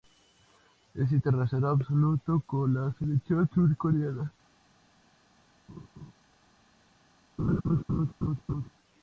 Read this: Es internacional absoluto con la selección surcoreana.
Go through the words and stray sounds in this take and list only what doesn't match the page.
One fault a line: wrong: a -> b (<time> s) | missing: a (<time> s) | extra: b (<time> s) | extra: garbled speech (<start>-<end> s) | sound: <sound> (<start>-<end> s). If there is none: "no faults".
sound: laugh (5.7-6.1 s)
sound: laugh (7.4-8.7 s)